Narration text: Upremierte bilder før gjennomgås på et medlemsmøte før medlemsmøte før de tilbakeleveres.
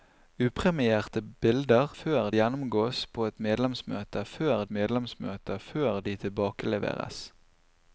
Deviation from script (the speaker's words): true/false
false